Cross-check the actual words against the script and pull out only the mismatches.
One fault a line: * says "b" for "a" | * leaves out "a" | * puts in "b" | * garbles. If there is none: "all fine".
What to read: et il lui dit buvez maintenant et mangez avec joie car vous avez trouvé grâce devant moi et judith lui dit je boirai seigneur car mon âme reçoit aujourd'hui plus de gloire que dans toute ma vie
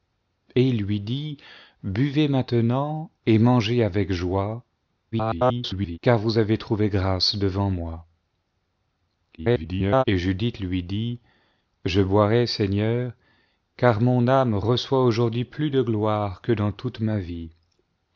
* garbles
* garbles